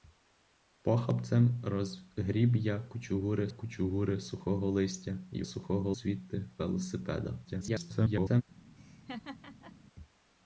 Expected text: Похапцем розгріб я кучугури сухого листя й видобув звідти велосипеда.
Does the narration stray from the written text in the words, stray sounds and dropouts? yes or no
yes